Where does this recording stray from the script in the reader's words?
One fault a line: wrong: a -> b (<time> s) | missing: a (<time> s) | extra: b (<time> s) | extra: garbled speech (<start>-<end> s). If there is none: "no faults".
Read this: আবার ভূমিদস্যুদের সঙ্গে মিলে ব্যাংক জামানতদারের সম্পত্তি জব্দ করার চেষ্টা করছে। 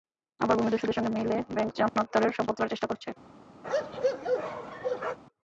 missing: জব্দ (2.6 s)